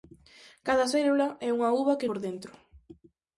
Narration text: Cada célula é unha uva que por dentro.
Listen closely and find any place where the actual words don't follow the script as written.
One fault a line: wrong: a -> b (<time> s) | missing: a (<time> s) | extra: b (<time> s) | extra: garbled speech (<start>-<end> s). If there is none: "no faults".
no faults